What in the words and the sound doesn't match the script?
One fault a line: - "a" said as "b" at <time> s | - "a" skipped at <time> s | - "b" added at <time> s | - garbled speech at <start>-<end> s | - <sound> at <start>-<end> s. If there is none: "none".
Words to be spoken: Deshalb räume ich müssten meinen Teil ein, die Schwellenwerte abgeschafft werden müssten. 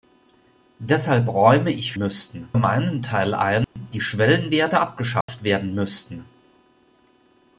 - dropout at 3.6-3.8 s
- dropout at 5.2-5.3 s